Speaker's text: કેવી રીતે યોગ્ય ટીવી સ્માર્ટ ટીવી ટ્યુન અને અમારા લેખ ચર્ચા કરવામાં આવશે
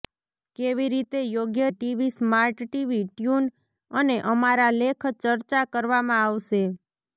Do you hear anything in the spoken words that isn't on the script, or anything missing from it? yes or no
no